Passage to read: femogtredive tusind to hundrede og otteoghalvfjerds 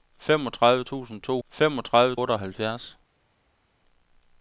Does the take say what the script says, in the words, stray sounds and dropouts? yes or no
no